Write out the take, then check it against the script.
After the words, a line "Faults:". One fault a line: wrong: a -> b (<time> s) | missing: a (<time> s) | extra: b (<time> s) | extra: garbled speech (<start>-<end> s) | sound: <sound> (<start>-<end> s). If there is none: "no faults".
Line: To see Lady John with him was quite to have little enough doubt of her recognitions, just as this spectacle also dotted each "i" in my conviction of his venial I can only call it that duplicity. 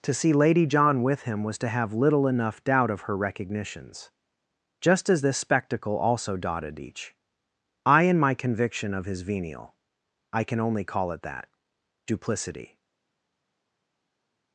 To see Lady John with him was to have little enough doubt of her recognitions, just as this spectacle also dotted each "i" in my conviction of his venial I can only call it that duplicity.
Faults:
missing: quite (1.6 s)